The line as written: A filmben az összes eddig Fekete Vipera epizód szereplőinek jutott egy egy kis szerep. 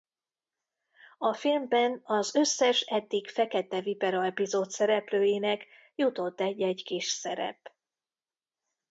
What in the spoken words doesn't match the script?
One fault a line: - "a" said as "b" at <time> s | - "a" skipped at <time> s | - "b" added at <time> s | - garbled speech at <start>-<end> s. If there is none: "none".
none